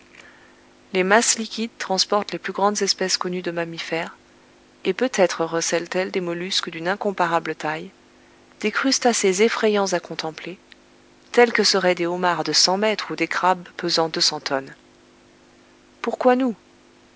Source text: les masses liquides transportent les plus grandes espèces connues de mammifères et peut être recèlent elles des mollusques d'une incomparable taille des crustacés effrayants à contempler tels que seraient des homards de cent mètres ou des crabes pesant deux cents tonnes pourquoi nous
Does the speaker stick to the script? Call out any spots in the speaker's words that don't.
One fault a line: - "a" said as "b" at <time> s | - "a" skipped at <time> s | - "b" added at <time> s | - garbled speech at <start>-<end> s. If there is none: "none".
none